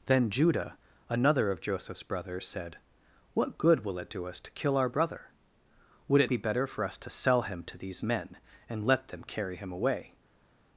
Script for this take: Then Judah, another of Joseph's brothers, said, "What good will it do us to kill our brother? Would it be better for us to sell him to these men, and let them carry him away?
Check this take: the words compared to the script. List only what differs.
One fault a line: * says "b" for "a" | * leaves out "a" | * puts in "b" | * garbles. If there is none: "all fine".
all fine